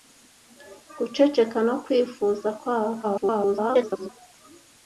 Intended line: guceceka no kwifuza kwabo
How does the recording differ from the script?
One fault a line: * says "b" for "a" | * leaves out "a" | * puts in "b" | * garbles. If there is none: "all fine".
* garbles